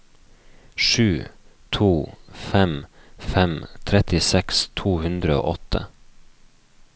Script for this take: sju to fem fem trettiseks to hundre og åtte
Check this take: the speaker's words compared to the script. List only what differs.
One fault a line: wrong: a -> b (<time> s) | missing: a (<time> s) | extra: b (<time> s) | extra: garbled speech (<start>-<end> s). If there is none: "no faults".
no faults